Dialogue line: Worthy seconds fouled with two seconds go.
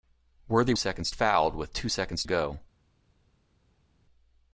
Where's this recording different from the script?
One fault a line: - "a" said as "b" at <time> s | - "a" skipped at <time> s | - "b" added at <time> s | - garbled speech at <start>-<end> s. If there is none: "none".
none